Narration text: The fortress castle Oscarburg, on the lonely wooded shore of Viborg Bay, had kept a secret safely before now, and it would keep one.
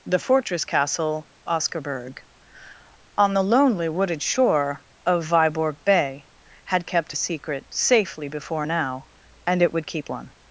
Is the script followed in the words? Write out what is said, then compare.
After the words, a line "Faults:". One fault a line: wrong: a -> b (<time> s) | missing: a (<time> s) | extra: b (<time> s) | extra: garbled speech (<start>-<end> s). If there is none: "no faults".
The fortress castle Oscarburg, on the lonely wooded shore of Viborg Bay, had kept a secret safely before now, and it would keep one.
Faults:
no faults